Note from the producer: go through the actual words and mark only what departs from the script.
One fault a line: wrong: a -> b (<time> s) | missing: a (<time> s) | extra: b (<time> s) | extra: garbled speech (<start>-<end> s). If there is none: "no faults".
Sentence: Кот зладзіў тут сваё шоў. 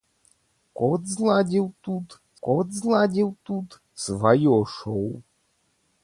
extra: кот зладзіў тут (2.5 s)